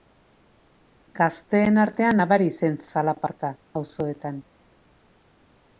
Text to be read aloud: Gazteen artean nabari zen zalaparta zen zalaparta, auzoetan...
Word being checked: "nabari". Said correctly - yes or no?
yes